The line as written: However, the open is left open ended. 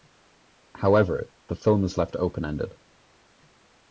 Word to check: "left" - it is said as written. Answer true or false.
true